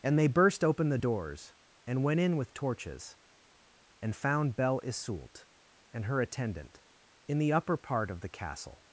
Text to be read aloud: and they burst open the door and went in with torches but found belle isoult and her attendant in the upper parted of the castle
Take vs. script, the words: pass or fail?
fail